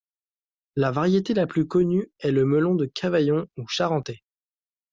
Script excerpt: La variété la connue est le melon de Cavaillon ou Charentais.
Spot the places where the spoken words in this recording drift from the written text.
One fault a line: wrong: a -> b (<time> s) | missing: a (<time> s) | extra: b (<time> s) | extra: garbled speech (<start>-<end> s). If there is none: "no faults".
extra: plus (1.4 s)